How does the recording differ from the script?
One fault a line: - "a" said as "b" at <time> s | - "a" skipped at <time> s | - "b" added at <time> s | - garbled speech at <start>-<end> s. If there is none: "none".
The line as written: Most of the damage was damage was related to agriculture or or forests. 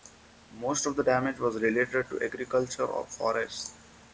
- "damage was" skipped at 1.6 s
- "or" skipped at 3.1 s